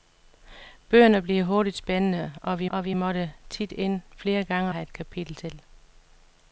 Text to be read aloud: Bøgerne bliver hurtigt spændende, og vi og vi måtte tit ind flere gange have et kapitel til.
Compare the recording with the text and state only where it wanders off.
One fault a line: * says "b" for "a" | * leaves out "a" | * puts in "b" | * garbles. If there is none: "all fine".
all fine